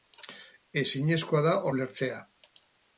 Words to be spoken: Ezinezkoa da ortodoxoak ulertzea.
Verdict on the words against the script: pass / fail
fail